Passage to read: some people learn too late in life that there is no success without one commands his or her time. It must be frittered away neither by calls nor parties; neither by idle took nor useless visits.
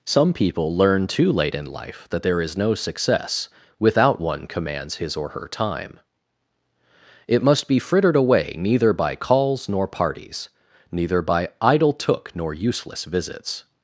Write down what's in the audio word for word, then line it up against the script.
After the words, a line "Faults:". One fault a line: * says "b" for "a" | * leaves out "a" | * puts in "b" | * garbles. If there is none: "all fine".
some people learn too late in life that there is no success without one commands his or her time. It must be frittered away neither by calls nor parties; neither by idle took nor useless visits.
Faults:
all fine